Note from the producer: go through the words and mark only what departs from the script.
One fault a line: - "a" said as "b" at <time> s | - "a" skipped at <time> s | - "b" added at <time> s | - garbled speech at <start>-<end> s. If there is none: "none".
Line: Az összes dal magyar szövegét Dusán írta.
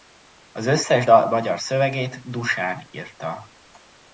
none